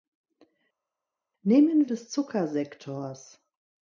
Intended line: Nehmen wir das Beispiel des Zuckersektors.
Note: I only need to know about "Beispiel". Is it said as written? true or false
false